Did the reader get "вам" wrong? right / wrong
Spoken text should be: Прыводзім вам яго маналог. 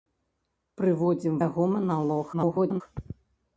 wrong